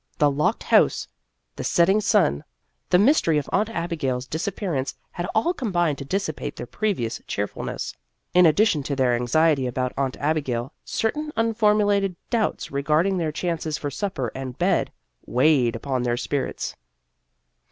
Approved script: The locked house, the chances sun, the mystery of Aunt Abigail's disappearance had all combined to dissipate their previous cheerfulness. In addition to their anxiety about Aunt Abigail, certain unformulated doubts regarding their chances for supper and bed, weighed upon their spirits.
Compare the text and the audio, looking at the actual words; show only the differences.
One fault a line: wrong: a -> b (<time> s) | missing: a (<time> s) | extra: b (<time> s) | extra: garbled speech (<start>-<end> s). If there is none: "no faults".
wrong: chances -> setting (1.6 s)